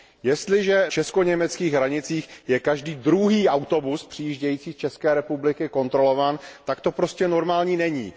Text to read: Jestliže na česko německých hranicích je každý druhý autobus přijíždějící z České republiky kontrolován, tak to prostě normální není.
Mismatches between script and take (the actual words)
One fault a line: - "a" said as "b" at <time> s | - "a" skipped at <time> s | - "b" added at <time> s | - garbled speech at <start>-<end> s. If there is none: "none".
- "na" skipped at 0.9 s